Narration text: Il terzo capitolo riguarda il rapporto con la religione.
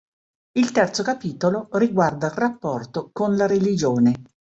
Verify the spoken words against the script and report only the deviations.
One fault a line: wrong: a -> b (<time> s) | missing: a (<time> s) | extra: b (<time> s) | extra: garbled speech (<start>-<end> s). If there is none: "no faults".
no faults